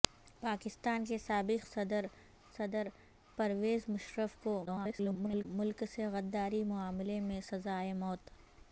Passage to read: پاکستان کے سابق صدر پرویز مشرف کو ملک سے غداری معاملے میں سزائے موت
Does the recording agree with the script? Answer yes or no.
no